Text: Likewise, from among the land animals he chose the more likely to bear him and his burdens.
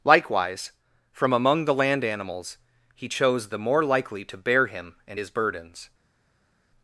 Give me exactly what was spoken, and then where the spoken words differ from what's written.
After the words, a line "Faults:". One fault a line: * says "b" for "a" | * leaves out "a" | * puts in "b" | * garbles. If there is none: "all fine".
Likewise, from among the land animals he chose the more likely to bear him and his burdens.
Faults:
all fine